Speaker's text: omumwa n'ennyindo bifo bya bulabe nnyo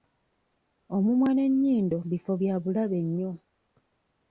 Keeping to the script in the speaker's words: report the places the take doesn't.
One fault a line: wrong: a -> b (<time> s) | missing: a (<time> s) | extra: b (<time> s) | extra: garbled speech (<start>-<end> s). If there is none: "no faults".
no faults